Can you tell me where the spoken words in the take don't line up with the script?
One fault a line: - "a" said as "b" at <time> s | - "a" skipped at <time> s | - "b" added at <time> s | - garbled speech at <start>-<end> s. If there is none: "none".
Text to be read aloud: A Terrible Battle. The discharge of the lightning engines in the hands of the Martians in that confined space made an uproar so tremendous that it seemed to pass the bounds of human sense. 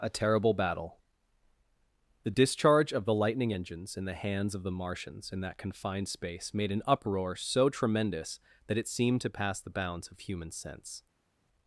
none